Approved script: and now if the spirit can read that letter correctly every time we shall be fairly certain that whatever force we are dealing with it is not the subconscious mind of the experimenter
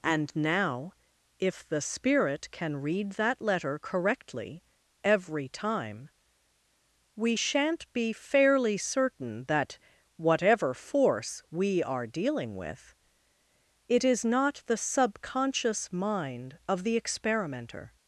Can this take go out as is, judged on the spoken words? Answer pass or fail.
fail